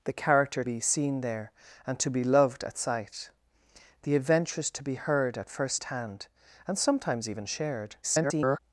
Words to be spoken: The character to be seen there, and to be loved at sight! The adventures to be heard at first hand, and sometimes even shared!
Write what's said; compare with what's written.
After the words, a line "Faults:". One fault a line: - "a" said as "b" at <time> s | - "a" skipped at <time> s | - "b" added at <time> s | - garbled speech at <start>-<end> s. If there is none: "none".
The character be seen there, and to be loved at sight! The adventures to be heard at first hand, and sometimes even shared! [garbled]
Faults:
- "to" skipped at 0.6 s
- garbled speech at 8.0-8.6 s